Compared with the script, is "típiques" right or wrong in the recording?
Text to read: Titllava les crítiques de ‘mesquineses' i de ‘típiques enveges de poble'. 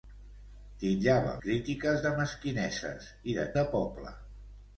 wrong